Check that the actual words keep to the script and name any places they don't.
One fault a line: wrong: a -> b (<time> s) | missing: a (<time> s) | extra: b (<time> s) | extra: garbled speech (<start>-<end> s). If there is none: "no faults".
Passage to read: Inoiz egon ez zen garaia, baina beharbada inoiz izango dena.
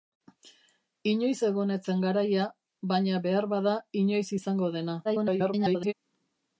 extra: garbled speech (5.0-5.9 s)